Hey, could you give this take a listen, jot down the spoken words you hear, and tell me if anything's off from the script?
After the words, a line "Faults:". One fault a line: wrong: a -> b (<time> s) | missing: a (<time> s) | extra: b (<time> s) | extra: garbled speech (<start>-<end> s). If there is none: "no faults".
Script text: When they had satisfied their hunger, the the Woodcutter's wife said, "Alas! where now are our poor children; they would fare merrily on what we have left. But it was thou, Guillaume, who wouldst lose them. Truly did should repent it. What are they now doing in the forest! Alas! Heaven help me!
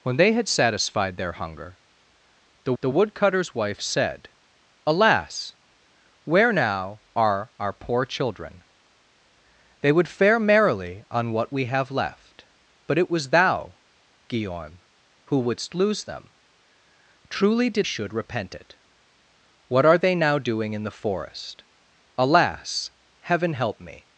When they had satisfied their hunger, the the Woodcutter's wife said, "Alas! where now are our poor children; they would fare merrily on what we have left. But it was thou, Guillaume, who wouldst lose them. Truly did should repent it. What are they now doing in the forest! Alas! Heaven help me!
Faults:
no faults